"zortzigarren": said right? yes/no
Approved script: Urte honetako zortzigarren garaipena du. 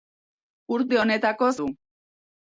no